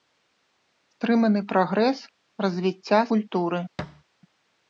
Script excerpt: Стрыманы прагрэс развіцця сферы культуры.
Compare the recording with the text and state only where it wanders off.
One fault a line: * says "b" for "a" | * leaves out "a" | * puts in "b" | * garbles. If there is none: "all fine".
* leaves out "сферы"